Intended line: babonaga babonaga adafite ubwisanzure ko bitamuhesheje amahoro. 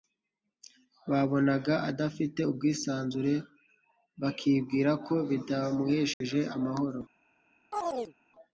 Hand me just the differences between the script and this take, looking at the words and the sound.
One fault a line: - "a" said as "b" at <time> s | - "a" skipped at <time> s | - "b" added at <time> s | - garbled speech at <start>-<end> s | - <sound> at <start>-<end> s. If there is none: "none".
- "babonaga" skipped at 1.7 s
- "bakibwira" added at 4.2 s
- dropout at 6.1-6.2 s
- chirp at 7.7-8.1 s